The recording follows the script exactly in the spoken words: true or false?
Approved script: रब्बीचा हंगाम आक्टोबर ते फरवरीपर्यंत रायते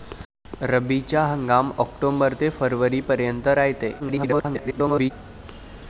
false